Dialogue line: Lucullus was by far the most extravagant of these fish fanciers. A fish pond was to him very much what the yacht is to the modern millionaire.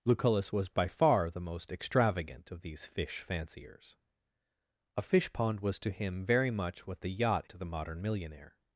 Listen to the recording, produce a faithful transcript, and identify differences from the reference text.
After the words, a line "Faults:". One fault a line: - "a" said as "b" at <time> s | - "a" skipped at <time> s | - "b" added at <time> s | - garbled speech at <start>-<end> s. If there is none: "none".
Lucullus was by far the most extravagant of these fish fanciers. A fish pond was to him very much what the yacht to the modern millionaire.
Faults:
- "is" skipped at 7.5 s